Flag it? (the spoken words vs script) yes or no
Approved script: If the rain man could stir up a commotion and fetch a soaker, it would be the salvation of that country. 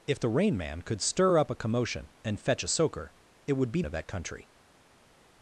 yes